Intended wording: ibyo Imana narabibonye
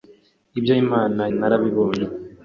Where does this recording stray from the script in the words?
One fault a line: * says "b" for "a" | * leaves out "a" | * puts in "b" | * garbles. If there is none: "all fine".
all fine